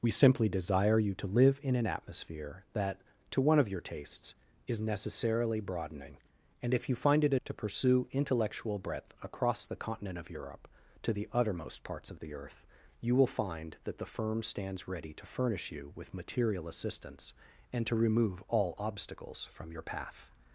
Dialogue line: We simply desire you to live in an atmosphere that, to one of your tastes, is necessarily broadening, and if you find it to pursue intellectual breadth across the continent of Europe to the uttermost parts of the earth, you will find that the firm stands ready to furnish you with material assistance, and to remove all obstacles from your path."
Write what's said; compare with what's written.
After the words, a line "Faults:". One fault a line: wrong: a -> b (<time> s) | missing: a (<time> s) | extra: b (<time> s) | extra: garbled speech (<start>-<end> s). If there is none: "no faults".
We simply desire you to live in an atmosphere that, to one of your tastes, is necessarily broadening, and if you find it to pursue intellectual breadth across the continent of Europe to the uttermost parts of the earth, you will find that the firm stands ready to furnish you with material assistance, and to remove all obstacles from your path."
Faults:
no faults